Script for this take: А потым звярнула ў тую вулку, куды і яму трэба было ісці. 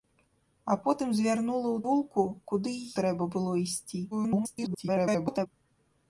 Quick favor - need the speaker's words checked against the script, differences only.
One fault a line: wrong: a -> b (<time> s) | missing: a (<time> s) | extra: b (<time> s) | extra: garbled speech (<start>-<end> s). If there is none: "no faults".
missing: тую (1.8 s)
missing: яму (2.8 s)
extra: garbled speech (4.1-5.5 s)